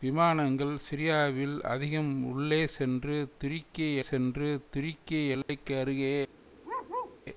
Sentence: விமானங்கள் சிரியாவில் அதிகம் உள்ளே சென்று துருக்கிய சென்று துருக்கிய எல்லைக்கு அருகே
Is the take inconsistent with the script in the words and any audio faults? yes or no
yes